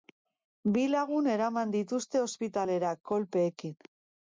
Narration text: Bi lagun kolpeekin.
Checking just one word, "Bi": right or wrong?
right